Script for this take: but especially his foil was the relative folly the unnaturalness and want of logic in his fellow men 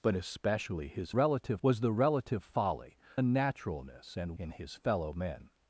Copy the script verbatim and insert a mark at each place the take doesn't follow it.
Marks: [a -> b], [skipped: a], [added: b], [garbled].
but especially his [foil -> relative] was the relative folly [skipped: the] unnaturalness and [skipped: want of logic] in his fellow men